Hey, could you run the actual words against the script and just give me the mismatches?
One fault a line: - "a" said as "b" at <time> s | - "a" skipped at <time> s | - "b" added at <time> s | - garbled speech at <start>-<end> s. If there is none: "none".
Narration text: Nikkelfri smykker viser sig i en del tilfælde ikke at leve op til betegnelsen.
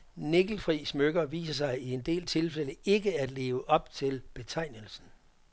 none